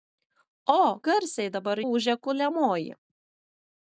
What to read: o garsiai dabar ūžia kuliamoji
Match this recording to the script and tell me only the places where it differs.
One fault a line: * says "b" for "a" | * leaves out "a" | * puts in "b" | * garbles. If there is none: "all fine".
all fine